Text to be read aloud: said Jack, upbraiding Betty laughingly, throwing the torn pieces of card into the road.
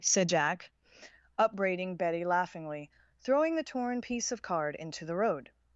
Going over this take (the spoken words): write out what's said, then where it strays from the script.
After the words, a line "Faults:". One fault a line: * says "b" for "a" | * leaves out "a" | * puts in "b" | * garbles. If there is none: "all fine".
said Jack, upbraiding Betty laughingly, throwing the torn piece of card into the road.
Faults:
* says "piece" for "pieces"